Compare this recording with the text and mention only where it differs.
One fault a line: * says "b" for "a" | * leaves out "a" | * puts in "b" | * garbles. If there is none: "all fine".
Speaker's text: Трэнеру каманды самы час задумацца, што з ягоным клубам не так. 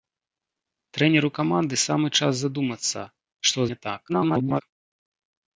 * leaves out "з ягоным клубам"
* garbles